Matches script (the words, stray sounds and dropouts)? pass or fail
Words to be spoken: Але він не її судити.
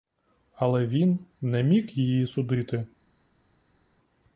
fail